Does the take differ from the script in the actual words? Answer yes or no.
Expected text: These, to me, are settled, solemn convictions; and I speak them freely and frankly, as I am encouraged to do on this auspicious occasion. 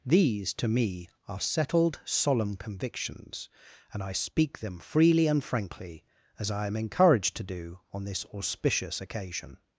no